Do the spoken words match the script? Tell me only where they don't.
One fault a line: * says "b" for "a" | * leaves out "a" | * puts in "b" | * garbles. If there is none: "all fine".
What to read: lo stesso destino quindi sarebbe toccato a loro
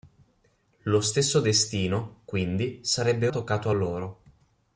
all fine